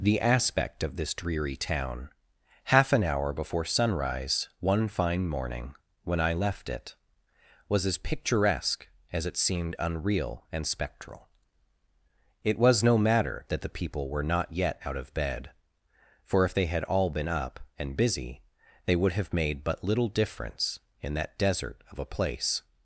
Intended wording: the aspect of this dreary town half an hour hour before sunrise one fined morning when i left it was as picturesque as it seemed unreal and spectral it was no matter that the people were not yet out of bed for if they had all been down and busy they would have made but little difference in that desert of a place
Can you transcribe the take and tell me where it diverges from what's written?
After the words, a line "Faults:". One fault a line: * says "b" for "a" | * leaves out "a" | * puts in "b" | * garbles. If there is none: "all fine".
the aspect of this dreary town half an hour before sunrise one fine morning when i left it was as picturesque as it seemed unreal and spectral it was no matter that the people were not yet out of bed for if they had all been up and busy they would have made but little difference in that desert of a place
Faults:
* leaves out "hour"
* says "fine" for "fined"
* says "up" for "down"